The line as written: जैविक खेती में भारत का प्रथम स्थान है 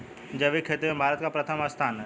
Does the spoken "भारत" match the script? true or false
true